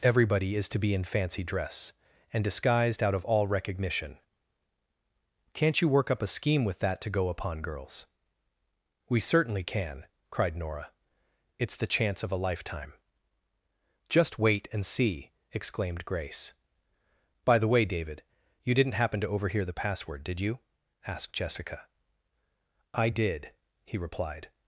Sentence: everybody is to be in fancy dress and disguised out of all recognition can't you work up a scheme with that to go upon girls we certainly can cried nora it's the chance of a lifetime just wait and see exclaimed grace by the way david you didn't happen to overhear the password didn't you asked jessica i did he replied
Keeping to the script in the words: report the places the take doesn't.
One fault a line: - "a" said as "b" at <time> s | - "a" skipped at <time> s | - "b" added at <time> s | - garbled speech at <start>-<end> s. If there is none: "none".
- "didn't" said as "did" at 20.2 s